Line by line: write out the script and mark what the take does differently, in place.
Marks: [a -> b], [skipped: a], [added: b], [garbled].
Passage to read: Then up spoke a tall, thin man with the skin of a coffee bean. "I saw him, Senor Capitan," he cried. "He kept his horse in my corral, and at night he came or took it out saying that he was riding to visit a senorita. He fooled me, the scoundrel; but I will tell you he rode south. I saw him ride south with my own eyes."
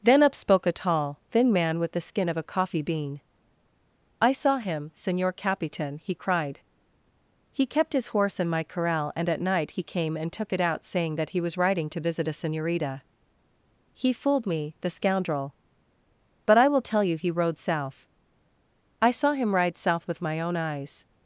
Then up spoke a tall, thin man with the skin of a coffee bean. "I saw him, Senor Capitan," he cried. "He kept his horse in my corral, and at night he came [or -> and] took it out saying that he was riding to visit a senorita. He fooled me, the scoundrel; but I will tell you he rode south. I saw him ride south with my own eyes."